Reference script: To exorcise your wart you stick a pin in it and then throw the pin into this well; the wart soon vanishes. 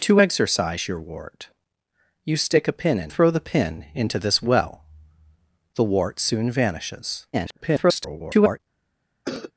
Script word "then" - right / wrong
wrong